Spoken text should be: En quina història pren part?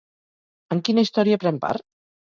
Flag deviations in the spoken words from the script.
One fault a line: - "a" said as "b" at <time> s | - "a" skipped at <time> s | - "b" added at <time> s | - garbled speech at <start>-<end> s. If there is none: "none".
none